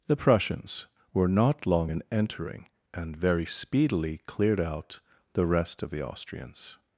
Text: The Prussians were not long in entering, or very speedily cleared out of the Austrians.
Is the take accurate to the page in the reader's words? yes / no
no